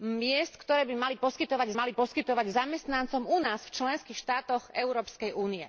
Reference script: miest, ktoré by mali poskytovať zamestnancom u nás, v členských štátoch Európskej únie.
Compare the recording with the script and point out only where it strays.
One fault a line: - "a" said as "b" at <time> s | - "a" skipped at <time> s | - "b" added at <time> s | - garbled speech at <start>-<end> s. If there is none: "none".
- "mali poskytovať" added at 1.7 s